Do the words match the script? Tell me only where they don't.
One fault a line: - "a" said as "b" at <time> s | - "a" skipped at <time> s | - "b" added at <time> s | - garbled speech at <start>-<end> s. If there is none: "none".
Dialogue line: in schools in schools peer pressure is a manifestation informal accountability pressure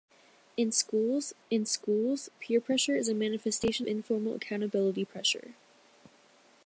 none